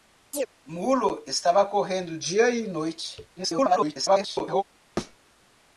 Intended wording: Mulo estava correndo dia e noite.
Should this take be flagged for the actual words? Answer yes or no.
yes